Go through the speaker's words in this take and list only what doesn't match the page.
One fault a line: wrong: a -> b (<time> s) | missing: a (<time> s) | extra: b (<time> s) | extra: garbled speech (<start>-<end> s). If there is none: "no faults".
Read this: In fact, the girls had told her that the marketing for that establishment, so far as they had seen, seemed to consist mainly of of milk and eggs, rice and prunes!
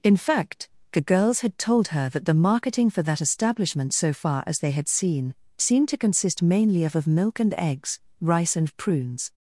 no faults